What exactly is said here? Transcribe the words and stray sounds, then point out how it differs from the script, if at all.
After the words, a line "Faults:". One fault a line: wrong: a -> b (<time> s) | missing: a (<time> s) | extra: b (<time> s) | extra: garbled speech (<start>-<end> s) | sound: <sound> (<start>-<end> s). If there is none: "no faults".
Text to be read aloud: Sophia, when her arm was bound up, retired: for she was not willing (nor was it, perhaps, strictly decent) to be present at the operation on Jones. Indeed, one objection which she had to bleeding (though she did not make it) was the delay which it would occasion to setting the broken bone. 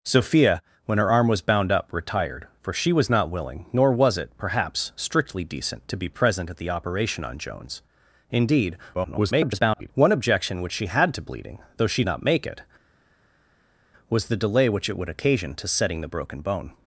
Sophia, when her arm was bound up, retired: for she was not willing (nor was it, perhaps, strictly decent) to be present at the operation on Jones. Indeed, [garbled] one objection which she had to bleeding (though she not make it) was the delay which it would occasion to setting the broken bone.
Faults:
extra: garbled speech (8.9-9.9 s)
missing: did (12.0 s)